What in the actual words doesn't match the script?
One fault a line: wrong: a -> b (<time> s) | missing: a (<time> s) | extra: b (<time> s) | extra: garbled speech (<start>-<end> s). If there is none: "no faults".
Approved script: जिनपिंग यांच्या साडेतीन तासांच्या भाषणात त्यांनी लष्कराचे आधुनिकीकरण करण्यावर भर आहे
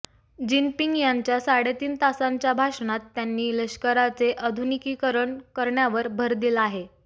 extra: दिला (6.3 s)